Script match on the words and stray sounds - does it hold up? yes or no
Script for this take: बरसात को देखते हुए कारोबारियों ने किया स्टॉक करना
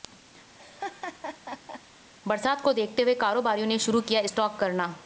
no